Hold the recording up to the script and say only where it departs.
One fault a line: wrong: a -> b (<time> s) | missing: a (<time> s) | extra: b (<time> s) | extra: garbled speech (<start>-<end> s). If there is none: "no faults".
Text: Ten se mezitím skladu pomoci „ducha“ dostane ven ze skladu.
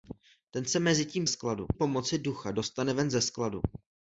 no faults